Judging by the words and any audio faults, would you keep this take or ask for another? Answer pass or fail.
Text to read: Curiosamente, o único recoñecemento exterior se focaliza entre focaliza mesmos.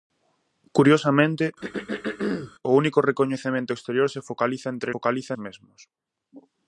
fail